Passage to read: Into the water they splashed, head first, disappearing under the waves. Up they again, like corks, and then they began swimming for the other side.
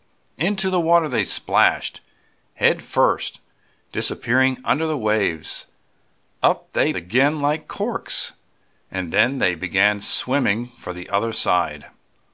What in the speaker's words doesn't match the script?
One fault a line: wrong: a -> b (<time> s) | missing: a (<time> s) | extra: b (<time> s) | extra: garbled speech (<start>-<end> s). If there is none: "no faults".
no faults